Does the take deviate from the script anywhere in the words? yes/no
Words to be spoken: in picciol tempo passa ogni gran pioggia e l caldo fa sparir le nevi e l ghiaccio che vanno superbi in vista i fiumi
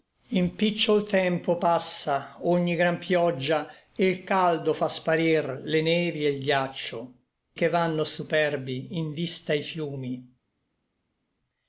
no